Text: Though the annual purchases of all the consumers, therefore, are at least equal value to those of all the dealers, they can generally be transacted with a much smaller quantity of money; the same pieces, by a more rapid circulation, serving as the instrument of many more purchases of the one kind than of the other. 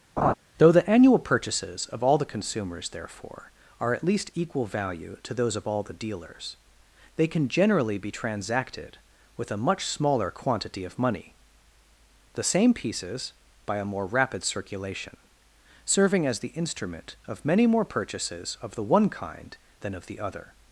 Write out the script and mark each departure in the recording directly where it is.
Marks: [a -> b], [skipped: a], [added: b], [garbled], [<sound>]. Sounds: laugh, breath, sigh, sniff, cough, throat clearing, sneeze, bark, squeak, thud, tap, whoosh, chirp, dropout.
[laugh] Though the annual purchases of all the consumers, therefore, are at least equal value to those of all the dealers, they can generally be transacted with a much smaller quantity of money; the same pieces, by a more rapid circulation, serving as the instrument of many more purchases of the one kind than of the other.